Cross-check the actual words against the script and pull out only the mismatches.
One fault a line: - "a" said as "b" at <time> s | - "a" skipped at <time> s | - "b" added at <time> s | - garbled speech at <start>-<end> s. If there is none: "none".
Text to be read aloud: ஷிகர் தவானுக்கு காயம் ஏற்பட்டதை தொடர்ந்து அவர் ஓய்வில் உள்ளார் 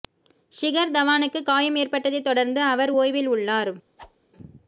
none